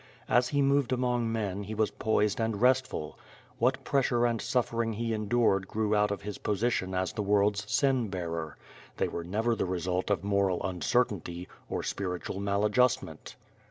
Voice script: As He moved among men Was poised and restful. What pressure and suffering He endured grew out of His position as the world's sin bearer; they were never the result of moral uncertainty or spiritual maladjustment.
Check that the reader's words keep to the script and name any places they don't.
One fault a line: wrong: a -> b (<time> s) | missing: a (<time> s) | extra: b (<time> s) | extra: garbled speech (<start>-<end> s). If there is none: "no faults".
extra: He (1.6 s)